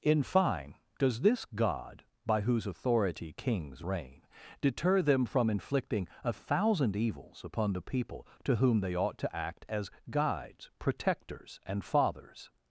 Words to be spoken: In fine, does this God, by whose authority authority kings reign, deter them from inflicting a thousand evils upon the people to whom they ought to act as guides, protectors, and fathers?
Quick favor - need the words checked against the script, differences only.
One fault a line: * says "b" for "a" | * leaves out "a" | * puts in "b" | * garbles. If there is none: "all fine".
* leaves out "authority"